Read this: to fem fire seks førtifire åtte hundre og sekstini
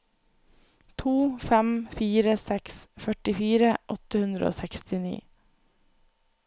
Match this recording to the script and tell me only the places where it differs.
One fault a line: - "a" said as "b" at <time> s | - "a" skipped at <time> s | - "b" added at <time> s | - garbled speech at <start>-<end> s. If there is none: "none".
none